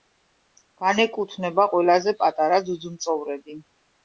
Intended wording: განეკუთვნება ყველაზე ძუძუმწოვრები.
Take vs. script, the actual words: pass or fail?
fail